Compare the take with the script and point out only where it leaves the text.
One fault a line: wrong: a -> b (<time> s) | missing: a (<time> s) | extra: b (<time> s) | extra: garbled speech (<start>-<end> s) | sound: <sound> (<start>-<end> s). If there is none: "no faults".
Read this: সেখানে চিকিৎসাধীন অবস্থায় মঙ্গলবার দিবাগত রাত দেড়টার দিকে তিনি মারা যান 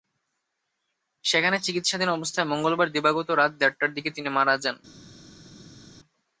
no faults